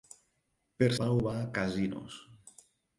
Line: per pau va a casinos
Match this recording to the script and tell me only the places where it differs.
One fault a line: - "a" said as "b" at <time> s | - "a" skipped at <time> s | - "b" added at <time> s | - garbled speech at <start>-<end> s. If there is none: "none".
none